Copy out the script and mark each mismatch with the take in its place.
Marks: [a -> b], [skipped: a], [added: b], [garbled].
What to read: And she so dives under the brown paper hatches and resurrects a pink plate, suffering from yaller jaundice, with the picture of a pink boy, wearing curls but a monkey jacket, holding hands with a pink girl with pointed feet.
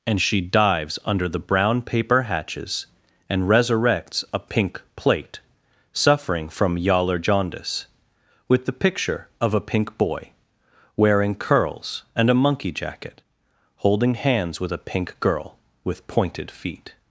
And she [skipped: so] dives under the brown paper hatches and resurrects a pink plate, suffering from yaller jaundice, with the picture of a pink boy, wearing curls [but -> and] a monkey jacket, holding hands with a pink girl with pointed feet.